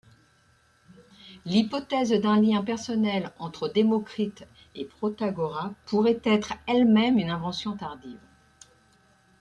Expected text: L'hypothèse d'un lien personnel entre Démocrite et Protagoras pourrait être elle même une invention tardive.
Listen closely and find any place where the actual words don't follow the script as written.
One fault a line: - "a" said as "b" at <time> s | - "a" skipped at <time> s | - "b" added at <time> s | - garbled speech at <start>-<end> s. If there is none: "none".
none